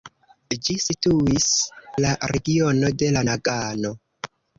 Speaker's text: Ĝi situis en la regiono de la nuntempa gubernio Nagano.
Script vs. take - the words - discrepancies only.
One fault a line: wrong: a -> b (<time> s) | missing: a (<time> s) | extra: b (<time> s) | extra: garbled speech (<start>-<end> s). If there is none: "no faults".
missing: en (1.4 s)
missing: nuntempa gubernio (3.2 s)